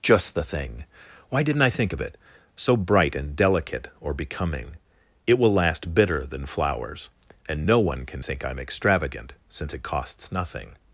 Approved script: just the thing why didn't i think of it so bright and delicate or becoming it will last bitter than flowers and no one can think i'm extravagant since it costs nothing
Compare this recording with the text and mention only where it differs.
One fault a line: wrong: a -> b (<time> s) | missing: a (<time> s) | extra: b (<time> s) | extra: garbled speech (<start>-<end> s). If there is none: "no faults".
no faults